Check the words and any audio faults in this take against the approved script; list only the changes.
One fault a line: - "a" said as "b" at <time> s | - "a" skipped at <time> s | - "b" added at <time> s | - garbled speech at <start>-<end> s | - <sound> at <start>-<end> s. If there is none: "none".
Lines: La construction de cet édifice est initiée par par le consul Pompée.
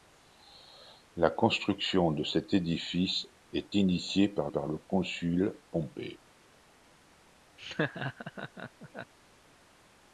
- laugh at 7.6-9.1 s